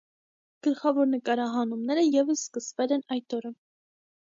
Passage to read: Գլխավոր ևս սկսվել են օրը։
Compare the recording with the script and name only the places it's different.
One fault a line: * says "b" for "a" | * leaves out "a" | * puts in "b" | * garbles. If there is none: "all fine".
* puts in "նկարահանումները"
* puts in "այդ"